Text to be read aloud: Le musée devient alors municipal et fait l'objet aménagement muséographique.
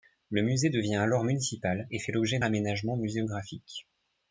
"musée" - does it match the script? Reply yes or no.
yes